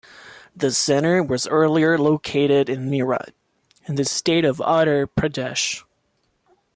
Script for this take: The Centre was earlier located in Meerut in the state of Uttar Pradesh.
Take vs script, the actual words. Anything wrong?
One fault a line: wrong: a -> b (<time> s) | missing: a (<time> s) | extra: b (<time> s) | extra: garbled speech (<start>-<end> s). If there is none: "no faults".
no faults